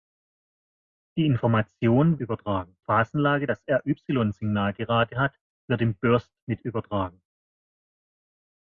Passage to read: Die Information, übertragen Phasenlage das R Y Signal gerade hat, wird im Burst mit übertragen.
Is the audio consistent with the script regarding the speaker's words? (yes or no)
yes